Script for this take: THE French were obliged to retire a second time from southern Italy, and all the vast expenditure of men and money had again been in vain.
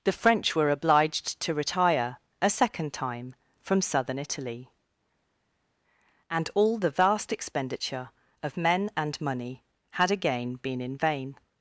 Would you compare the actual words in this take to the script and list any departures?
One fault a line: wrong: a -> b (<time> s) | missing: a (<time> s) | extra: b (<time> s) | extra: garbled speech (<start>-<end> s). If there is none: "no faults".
no faults